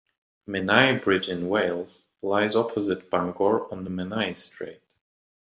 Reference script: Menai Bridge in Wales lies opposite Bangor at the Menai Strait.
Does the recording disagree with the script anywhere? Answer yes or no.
yes